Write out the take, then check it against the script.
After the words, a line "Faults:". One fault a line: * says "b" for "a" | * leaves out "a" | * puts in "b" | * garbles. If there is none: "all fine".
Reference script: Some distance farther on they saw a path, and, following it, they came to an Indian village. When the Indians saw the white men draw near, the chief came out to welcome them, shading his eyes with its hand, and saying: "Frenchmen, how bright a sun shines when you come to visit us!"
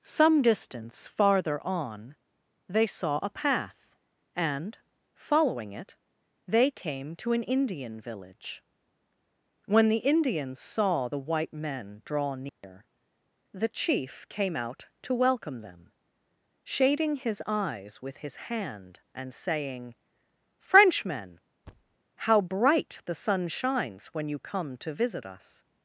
Some distance farther on they saw a path, and, following it, they came to an Indian village. When the Indians saw the white men draw near, the chief came out to welcome them, shading his eyes with his hand, and saying: "Frenchmen, how bright the sun shines when you come to visit us!"
Faults:
* says "his" for "its"
* says "the" for "a"